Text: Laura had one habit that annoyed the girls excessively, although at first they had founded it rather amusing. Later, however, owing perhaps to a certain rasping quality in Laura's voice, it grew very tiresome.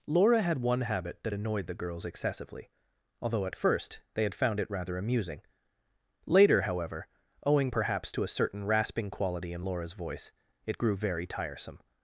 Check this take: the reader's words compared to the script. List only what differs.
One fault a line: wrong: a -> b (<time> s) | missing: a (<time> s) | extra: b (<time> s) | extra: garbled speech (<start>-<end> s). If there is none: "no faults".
wrong: founded -> found (4.3 s)